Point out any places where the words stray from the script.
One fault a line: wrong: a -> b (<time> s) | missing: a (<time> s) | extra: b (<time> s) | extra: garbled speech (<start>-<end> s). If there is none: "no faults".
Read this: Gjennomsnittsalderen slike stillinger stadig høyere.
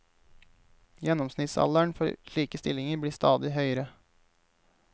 extra: for (2.0 s)
extra: blir (3.0 s)